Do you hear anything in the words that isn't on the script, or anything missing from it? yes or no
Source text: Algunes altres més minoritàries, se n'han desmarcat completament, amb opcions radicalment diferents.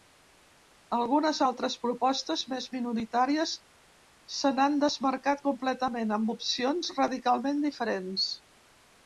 yes